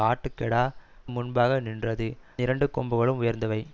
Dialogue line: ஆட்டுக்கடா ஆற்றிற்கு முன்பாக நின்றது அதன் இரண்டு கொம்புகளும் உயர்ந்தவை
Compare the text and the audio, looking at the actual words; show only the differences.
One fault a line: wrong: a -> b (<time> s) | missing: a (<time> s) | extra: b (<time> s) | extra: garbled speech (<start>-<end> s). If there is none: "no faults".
missing: ஆற்றிற்கு (0.6 s)
missing: அதன் (2.1 s)